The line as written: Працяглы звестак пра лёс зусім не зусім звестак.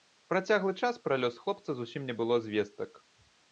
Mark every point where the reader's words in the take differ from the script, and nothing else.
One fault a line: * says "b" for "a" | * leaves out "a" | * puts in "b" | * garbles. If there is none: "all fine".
* says "час" for "звестак"
* puts in "хлопца"
* says "было" for "зусім"